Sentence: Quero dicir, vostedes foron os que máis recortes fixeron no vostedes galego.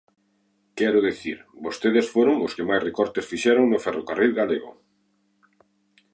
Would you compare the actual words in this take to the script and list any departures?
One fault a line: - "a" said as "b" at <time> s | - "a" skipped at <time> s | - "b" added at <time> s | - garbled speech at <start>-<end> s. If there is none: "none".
- "vostedes" said as "ferrocarril" at 3.9 s